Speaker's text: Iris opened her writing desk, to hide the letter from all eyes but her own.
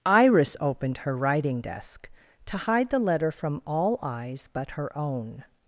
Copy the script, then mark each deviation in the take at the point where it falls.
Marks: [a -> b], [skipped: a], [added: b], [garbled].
Iris opened her writing desk, to hide the letter from all eyes but her own.